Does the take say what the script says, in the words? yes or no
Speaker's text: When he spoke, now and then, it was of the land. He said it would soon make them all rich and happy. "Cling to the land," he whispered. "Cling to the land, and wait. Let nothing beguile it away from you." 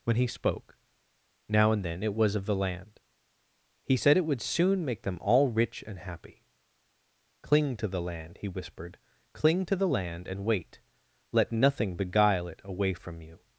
yes